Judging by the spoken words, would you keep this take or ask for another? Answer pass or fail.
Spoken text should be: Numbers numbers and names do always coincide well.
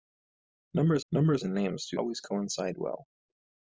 pass